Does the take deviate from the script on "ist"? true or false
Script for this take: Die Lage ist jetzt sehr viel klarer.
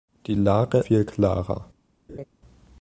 true